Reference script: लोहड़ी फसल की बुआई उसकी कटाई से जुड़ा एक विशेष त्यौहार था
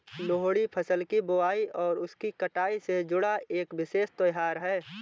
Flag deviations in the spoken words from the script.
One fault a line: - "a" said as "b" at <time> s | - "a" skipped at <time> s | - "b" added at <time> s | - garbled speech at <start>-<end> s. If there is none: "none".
- "और" added at 1.8 s
- "था" said as "है" at 4.6 s